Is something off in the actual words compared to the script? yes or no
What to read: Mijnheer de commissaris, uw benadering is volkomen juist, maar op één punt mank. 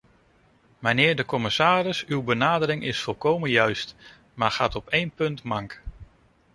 yes